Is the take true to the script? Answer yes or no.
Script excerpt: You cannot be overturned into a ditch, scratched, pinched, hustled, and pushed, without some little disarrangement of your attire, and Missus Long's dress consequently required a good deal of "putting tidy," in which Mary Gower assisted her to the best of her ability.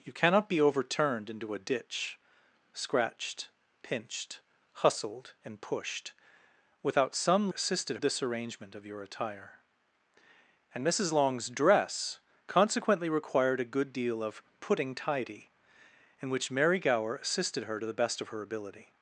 no